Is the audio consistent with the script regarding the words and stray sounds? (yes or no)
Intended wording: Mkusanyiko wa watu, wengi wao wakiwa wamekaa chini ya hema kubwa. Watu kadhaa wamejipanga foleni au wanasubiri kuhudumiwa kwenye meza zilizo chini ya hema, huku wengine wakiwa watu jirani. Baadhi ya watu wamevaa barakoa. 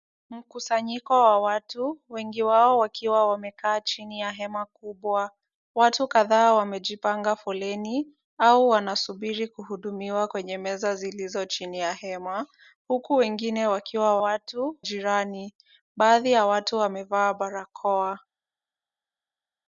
yes